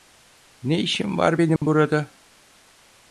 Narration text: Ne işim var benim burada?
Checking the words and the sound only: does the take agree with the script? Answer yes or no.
no